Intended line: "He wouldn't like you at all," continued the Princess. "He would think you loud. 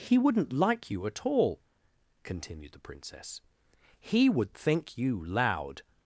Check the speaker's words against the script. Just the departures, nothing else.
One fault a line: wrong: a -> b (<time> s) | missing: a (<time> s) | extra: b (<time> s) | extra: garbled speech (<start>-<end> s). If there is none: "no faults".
no faults